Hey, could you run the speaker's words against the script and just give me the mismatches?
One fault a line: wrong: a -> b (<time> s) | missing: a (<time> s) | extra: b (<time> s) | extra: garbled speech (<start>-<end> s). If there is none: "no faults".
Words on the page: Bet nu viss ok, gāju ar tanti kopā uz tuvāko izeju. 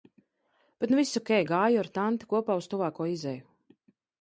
no faults